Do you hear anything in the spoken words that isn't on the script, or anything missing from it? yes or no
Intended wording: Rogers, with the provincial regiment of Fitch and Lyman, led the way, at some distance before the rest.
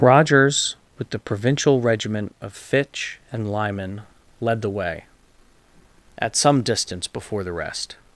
no